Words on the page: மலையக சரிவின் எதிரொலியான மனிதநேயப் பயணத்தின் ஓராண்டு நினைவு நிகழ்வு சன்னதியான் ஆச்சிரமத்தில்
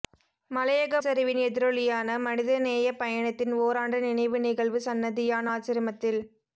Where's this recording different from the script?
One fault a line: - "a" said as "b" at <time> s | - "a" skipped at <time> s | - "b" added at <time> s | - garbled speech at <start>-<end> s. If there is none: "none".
none